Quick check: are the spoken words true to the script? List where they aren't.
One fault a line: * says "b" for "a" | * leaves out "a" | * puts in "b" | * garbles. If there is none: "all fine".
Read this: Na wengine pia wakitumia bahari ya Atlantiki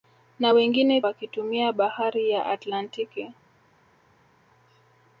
* leaves out "pia"